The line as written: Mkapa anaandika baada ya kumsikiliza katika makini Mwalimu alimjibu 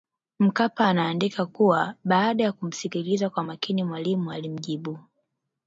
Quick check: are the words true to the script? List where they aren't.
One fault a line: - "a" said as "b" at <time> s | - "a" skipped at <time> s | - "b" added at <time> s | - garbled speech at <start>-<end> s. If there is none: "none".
- "kuwa" added at 1.4 s
- "katika" said as "kwa" at 3.3 s